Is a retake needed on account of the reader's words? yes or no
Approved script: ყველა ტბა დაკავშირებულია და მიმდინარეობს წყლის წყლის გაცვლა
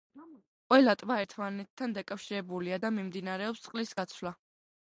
yes